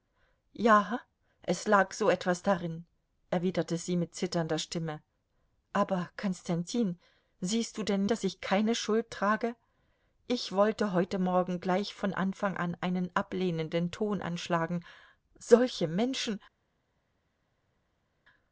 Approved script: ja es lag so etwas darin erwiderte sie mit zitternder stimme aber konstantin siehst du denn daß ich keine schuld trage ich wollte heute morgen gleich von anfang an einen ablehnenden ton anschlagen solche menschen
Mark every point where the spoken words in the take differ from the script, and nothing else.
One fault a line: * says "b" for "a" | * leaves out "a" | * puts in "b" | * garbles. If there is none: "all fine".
all fine